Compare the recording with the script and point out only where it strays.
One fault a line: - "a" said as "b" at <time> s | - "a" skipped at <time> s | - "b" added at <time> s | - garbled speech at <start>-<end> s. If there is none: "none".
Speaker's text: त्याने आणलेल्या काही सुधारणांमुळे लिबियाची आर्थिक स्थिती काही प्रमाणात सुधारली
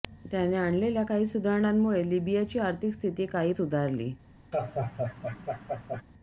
- "प्रमाणात" skipped at 3.5 s